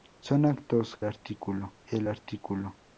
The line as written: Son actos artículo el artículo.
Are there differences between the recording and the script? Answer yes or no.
no